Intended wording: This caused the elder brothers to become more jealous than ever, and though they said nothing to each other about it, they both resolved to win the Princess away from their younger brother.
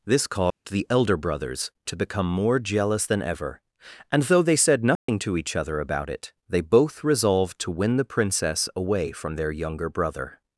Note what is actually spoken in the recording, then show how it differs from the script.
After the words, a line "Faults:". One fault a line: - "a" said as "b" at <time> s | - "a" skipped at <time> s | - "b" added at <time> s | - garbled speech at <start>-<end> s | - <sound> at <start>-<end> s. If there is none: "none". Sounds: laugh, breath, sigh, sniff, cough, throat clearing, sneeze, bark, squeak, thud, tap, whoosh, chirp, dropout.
This caused the elder brothers to become more jealous than ever, and though they said nothing to each other about it, they both resolved to win the Princess away from their younger brother.
Faults:
- dropout at 0.5-0.7 s
- dropout at 5.0-5.1 s